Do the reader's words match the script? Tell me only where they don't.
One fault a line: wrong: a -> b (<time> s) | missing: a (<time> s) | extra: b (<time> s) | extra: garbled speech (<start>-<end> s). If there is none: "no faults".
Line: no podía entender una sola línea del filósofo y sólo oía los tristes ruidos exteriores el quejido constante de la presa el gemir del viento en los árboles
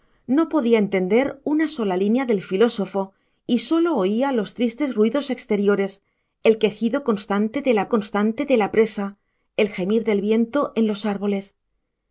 extra: constante de la (7.9 s)